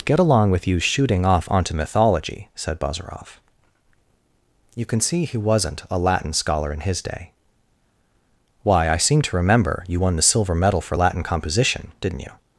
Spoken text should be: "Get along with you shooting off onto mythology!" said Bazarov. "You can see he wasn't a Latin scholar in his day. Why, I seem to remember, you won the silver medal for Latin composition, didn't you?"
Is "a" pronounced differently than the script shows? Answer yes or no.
no